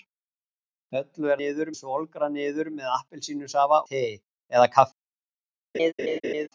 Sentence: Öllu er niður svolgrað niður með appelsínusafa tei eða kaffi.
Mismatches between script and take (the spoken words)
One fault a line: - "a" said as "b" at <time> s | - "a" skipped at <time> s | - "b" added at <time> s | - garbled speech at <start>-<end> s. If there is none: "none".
none